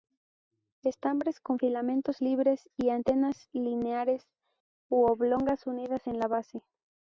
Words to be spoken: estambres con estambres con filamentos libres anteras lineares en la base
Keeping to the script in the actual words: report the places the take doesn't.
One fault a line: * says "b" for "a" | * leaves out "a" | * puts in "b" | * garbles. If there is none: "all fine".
* leaves out "estambres con"
* puts in "y"
* puts in "u oblongas unidas"